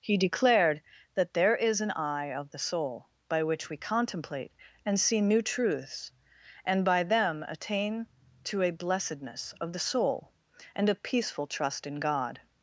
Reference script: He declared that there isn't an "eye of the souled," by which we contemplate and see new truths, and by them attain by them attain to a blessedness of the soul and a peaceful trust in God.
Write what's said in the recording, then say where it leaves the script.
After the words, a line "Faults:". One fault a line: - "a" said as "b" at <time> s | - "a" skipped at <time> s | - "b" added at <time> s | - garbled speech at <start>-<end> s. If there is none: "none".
He declared that there is an "eye of the soul," by which we contemplate and see new truths, and by them attain to a blessedness of the soul and a peaceful trust in God.
Faults:
- "isn't" said as "is" at 1.6 s
- "souled" said as "soul" at 2.6 s
- "by them attain" skipped at 8.1 s